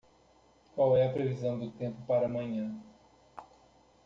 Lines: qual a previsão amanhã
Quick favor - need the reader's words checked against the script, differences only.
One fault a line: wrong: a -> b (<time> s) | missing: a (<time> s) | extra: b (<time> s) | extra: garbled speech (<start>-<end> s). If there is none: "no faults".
extra: é (1.0 s)
extra: do tempo para (1.6 s)